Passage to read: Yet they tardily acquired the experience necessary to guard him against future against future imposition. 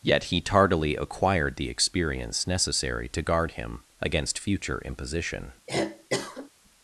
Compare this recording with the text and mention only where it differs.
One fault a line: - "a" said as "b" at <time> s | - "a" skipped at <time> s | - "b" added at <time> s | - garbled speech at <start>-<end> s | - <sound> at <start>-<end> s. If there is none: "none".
- "they" said as "he" at 0.2 s
- "against future" skipped at 4.8 s
- cough at 5.7-6.5 s